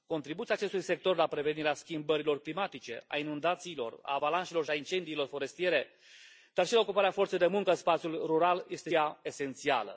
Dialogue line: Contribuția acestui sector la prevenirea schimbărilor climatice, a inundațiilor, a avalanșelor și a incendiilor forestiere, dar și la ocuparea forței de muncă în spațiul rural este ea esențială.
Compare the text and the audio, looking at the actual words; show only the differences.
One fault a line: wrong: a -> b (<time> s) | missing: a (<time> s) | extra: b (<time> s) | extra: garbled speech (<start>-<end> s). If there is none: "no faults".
no faults